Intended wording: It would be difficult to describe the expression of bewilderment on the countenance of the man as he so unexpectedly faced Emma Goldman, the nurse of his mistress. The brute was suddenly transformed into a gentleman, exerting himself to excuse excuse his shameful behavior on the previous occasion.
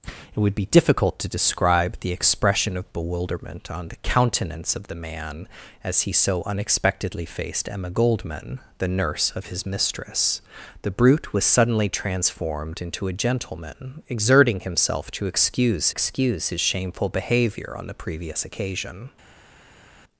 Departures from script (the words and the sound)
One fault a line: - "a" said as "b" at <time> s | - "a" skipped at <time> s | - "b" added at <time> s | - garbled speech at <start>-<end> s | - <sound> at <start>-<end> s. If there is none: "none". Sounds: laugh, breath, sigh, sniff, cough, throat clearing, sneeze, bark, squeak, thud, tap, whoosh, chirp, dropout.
none